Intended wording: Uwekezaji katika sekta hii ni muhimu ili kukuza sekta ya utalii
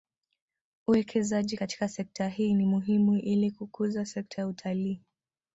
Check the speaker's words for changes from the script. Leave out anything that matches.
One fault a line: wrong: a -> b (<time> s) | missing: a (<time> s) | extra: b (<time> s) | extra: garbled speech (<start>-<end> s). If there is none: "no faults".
no faults